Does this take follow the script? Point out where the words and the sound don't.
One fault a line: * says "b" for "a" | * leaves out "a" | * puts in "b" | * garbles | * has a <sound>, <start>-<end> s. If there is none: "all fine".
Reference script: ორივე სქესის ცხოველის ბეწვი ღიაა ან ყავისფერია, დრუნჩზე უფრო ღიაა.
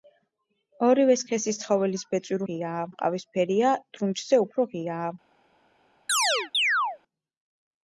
* has a chirp, 6.1-7.0 s